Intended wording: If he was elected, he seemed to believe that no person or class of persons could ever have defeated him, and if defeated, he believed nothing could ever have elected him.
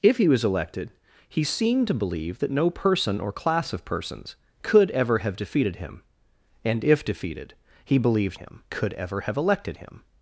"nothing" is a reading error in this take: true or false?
true